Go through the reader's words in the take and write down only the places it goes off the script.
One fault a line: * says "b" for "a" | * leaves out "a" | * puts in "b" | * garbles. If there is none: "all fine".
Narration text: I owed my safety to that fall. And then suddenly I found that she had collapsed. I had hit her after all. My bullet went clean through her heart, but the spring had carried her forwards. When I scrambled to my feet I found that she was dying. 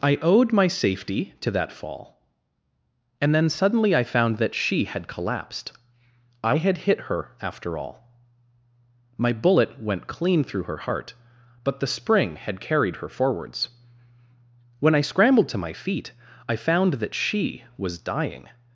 all fine